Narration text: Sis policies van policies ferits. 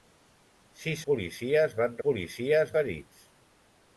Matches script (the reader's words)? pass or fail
pass